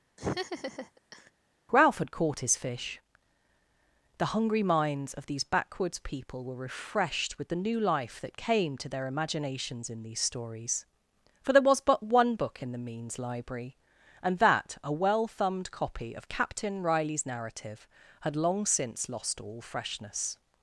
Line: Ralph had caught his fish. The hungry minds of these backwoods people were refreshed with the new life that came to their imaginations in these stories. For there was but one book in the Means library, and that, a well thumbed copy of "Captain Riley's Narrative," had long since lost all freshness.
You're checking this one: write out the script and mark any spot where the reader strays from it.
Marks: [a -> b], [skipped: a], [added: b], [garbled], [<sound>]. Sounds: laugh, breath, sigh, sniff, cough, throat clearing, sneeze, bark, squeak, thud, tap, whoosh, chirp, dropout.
[laugh] Ralph had caught his fish. The hungry minds of these backwoods people were refreshed with the new life that came to their imaginations in these stories. For there was but one book in the Means library, and that, a well thumbed copy of "Captain Riley's Narrative," had long since lost all freshness.